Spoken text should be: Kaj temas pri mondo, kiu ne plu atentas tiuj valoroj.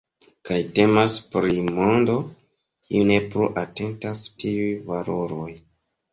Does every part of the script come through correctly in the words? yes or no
yes